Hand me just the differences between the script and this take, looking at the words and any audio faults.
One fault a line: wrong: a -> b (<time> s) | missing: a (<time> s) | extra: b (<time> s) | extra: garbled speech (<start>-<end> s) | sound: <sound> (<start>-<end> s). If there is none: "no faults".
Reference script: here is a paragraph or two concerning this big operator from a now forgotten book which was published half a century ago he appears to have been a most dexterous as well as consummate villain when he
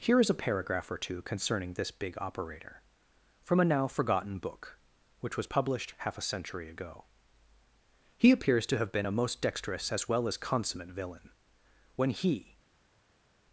no faults